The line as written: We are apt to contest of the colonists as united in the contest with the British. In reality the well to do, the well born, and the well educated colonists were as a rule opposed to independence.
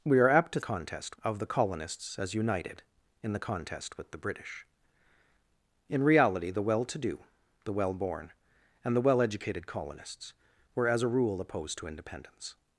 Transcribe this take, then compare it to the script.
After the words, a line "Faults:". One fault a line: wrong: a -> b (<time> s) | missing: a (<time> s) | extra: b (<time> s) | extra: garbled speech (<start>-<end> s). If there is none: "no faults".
We are apt to contest of the colonists as united in the contest with the British. In reality the well to do, the well born, and the well educated colonists were as a rule opposed to independence.
Faults:
no faults